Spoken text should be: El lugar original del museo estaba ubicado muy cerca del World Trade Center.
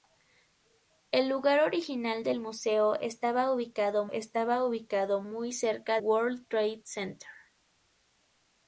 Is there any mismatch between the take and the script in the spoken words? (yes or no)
yes